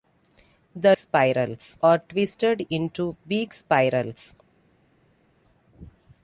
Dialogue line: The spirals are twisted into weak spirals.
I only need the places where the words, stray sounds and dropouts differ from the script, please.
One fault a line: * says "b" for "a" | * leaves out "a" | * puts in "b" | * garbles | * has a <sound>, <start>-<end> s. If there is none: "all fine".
all fine